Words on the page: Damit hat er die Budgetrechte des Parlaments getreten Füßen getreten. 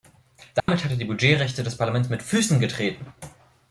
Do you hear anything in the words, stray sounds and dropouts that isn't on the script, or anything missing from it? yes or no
yes